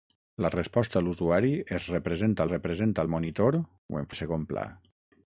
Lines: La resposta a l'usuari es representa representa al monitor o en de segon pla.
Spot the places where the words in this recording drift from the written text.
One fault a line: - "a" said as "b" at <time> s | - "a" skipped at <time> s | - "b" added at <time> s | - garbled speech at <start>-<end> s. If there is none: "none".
none